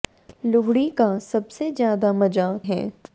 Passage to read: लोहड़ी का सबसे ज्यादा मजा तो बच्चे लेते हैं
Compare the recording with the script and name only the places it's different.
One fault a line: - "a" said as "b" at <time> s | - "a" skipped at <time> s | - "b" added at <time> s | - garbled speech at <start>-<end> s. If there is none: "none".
- "तो बच्चे लेते" skipped at 2.5 s